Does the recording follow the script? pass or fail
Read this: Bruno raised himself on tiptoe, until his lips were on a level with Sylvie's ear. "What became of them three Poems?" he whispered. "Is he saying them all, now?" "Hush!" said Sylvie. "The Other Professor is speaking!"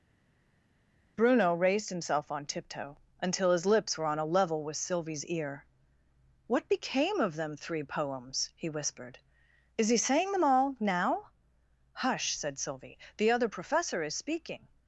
pass